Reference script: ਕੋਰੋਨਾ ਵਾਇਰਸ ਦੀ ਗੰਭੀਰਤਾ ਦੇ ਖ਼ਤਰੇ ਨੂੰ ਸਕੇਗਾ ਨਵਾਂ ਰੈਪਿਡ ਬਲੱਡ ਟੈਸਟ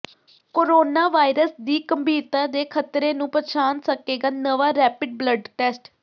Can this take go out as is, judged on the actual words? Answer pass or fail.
fail